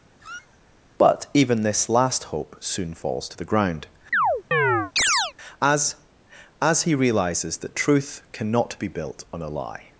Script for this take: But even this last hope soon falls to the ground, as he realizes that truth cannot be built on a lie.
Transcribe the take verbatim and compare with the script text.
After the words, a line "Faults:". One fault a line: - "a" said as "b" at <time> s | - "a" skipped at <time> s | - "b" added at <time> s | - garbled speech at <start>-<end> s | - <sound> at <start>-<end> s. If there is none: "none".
But even this last hope soon falls to the ground, as as he realizes that truth cannot be built on a lie.
Faults:
- squeak at 0.2-0.6 s
- chirp at 4.1-5.3 s
- "as" added at 6.6 s